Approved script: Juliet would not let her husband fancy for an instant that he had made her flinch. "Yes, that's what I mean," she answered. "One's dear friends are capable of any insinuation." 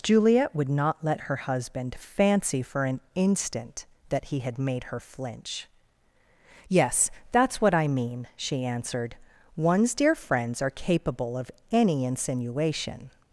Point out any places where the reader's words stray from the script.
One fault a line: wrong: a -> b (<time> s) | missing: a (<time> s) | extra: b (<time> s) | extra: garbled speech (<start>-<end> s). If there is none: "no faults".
no faults